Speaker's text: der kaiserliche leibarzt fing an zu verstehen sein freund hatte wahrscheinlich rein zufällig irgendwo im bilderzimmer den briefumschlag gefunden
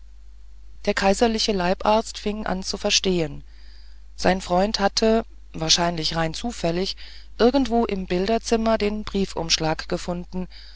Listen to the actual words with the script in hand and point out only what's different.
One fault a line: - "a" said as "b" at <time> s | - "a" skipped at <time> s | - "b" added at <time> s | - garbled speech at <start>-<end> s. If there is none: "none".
none